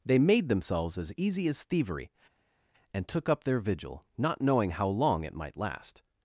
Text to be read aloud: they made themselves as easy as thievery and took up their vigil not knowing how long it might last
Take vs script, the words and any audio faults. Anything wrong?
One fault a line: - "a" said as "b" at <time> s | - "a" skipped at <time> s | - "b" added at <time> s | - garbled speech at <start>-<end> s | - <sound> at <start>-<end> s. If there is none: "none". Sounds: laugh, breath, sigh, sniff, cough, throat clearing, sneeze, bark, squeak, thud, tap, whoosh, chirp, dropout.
none